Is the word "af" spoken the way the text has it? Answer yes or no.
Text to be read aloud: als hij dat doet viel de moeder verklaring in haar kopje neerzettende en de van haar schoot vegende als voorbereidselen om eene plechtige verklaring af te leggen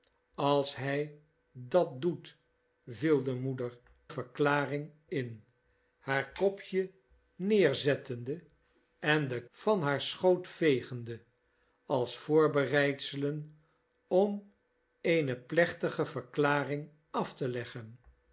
yes